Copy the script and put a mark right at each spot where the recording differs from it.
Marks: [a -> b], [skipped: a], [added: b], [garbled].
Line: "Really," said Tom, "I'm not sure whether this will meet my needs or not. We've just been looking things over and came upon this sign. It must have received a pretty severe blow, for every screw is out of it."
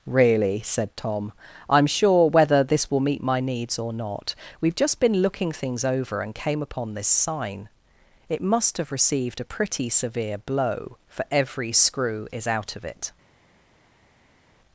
"Really," said Tom, "I'm [skipped: not] sure whether this will meet my needs or not. We've just been looking things over and came upon this sign. It must have received a pretty severe blow, for every screw is out of it."